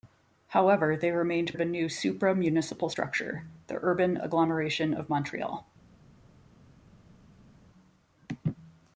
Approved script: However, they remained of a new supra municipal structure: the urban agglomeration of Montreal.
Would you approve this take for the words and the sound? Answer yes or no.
yes